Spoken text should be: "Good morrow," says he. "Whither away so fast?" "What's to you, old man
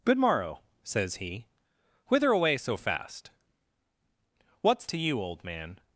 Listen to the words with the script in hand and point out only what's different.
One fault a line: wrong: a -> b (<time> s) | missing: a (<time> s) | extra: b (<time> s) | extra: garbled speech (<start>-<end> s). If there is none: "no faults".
no faults